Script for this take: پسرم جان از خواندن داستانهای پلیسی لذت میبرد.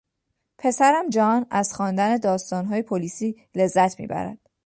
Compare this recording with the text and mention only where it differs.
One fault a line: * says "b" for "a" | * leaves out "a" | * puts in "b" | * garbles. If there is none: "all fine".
all fine